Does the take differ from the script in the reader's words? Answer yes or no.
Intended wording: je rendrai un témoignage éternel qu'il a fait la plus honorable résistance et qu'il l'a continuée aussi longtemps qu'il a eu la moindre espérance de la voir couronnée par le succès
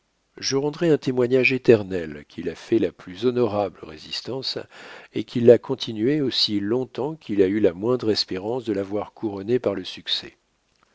no